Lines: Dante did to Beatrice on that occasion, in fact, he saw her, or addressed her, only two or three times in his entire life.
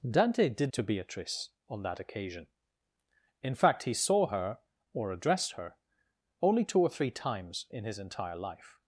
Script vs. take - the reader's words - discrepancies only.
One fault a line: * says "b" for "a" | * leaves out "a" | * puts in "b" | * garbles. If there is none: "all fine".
all fine